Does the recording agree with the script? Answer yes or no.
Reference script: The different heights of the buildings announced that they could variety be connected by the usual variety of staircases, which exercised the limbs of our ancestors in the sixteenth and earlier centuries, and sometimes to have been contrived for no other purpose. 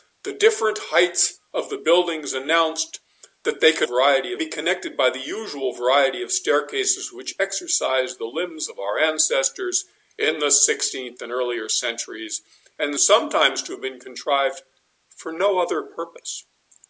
yes